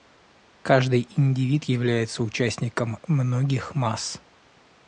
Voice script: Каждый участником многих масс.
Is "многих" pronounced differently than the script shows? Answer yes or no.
no